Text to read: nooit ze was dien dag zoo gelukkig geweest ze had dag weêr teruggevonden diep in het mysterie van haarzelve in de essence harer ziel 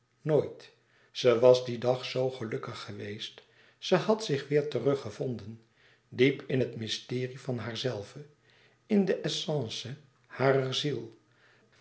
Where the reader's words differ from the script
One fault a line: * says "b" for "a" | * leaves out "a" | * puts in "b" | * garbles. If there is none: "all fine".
* says "zich" for "dag"